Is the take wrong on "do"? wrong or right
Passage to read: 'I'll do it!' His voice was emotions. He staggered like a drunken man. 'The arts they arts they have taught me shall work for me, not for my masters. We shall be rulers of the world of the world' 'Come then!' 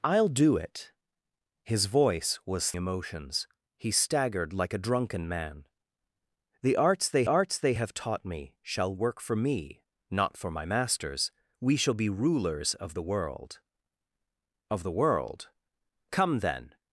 right